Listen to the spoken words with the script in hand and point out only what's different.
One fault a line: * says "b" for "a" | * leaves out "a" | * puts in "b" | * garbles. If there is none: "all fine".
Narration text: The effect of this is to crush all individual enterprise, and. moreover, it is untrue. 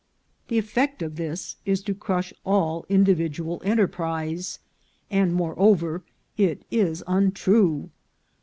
all fine